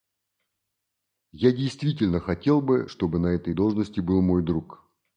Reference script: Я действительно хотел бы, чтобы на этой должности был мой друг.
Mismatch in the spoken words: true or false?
false